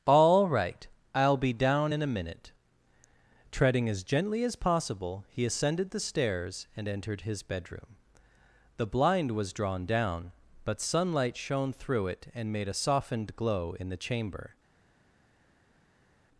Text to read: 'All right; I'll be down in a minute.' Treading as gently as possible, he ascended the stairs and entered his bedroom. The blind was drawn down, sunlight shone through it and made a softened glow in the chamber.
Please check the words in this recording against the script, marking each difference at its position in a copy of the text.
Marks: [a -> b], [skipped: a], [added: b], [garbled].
'All right; I'll be down in a minute.' Treading as gently as possible, he ascended the stairs and entered his bedroom. The blind was drawn down, [added: but] sunlight shone through it and made a softened glow in the chamber.